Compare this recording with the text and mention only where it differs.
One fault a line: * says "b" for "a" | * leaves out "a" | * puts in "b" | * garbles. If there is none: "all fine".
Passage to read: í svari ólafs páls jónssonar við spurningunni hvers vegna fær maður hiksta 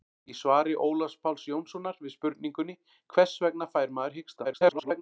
* garbles